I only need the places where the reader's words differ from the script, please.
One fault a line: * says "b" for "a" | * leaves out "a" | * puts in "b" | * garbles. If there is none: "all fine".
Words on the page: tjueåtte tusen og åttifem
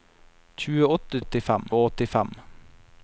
* says "åttifem" for "tusen"